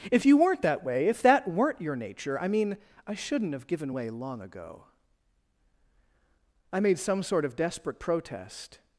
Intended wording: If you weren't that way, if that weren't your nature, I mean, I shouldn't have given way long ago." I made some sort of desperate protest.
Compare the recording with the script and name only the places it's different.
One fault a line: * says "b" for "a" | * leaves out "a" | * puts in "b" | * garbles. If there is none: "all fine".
all fine